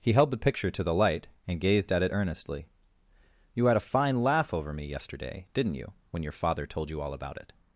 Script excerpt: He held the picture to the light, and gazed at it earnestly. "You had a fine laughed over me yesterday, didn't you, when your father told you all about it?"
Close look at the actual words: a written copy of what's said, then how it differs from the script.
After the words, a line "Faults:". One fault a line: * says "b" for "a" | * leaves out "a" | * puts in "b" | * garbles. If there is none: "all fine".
He held the picture to the light, and gazed at it earnestly. "You had a fine laugh over me yesterday, didn't you, when your father told you all about it?"
Faults:
* says "laugh" for "laughed"